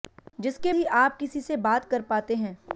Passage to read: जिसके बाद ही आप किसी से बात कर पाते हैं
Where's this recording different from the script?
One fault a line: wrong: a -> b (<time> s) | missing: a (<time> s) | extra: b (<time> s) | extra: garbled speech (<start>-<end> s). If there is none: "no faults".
missing: बाद (0.7 s)